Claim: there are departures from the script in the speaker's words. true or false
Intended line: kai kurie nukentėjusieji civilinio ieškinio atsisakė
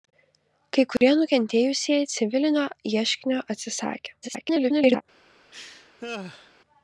true